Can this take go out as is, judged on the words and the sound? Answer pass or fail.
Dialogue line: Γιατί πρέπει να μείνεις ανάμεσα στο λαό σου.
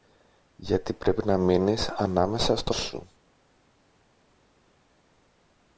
fail